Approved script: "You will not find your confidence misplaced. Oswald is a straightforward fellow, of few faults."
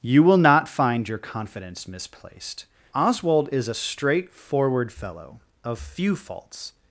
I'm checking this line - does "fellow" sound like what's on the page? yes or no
yes